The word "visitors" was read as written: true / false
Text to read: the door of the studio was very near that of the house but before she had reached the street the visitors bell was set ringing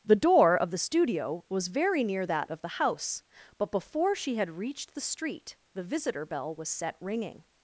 false